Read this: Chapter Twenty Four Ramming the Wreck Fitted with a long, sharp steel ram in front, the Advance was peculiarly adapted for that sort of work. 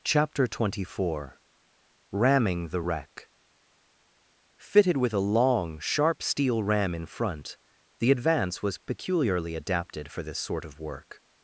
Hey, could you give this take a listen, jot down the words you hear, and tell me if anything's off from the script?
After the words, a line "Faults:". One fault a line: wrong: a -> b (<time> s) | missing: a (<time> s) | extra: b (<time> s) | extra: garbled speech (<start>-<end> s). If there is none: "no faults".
Chapter Twenty Four Ramming the Wreck Fitted with a long, sharp steel ram in front, the Advance was peculiarly adapted for this sort of work.
Faults:
wrong: that -> this (10.2 s)